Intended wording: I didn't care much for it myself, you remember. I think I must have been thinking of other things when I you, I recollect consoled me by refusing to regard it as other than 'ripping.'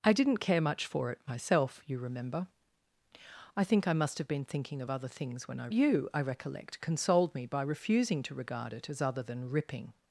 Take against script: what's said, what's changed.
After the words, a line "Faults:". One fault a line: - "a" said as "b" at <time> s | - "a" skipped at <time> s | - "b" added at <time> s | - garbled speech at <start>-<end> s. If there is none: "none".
I didn't care much for it myself, you remember. I think I must have been thinking of other things when I you, I recollect consoled me by refusing to regard it as other than 'ripping.'
Faults:
none